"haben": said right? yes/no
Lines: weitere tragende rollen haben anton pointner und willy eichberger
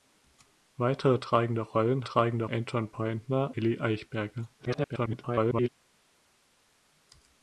no